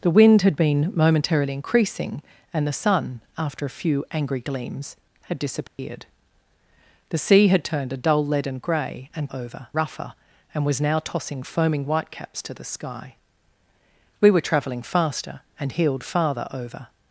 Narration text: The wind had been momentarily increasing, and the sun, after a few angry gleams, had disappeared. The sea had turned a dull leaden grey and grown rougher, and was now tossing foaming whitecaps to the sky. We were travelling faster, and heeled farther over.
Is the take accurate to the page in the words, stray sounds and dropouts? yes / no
no